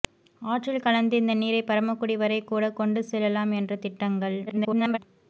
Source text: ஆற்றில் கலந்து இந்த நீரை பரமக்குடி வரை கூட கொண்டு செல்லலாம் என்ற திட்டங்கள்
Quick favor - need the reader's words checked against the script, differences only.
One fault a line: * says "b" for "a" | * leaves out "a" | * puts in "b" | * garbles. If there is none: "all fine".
* garbles